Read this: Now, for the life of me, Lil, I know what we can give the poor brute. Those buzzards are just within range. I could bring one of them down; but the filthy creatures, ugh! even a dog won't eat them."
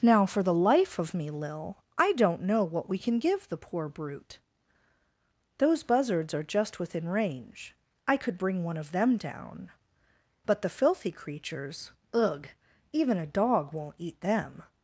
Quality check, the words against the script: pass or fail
fail